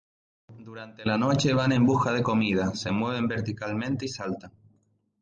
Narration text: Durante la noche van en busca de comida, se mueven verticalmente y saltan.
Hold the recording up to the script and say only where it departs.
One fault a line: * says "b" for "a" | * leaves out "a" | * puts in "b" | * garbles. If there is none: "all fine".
all fine